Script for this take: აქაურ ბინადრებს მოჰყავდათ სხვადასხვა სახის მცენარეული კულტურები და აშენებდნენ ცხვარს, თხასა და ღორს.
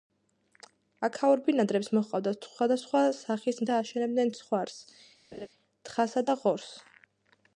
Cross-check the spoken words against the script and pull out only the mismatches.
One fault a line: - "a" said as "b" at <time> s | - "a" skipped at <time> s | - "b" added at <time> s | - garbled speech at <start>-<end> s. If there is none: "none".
- "მცენარეული კულტურები" skipped at 3.6 s